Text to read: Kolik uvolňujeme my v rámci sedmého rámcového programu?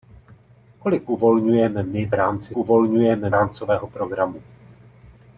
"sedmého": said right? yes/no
no